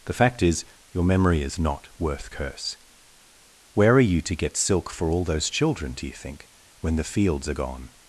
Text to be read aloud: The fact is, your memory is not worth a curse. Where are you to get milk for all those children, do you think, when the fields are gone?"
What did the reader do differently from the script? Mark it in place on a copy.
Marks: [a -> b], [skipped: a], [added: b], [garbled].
The fact is, your memory is not worth [skipped: a] curse. Where are you to get [milk -> silk] for all those children, do you think, when the fields are gone?"